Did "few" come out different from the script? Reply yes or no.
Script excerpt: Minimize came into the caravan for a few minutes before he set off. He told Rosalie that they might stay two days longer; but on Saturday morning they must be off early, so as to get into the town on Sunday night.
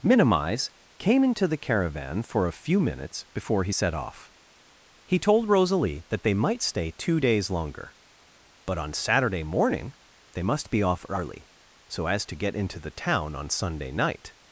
no